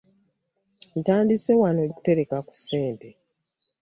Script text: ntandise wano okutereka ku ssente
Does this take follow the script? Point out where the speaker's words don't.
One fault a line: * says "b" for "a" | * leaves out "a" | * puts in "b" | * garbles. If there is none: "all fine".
all fine